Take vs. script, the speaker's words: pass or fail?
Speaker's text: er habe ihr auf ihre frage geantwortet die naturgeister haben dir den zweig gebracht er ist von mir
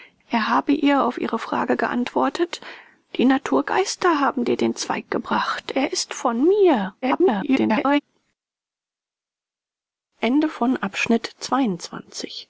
fail